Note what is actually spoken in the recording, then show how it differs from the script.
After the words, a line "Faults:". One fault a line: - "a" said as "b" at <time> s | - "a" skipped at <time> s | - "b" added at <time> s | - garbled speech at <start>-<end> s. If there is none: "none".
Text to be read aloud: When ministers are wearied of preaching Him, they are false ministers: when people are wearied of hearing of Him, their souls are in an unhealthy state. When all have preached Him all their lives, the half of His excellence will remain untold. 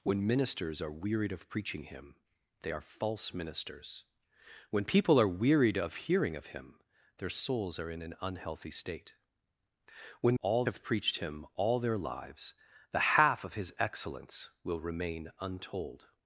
When ministers are wearied of preaching Him, they are false ministers: when people are wearied of hearing of Him, their souls are in an unhealthy state. When all have preached Him all their lives, the half of His excellence will remain untold.
Faults:
none